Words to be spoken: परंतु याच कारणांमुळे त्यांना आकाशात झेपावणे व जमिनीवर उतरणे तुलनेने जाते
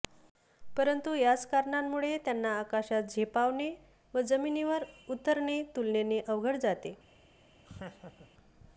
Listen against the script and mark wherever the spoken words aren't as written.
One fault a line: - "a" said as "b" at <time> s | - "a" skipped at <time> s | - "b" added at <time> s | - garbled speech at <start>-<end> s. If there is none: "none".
- "अवघड" added at 6.3 s